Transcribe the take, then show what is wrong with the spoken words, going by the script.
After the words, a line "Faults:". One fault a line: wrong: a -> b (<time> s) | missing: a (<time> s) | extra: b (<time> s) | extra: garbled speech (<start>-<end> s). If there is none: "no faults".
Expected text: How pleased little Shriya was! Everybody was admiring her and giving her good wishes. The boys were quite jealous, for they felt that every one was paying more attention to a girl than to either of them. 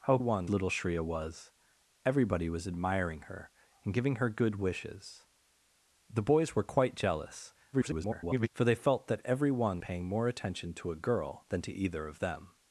How one little Shriya was! Everybody was admiring her and giving her good wishes. The boys were quite jealous, [garbled] for they felt that every one paying more attention to a girl than to either of them.
Faults:
wrong: pleased -> one (0.2 s)
extra: garbled speech (7.7-8.5 s)
missing: was (9.8 s)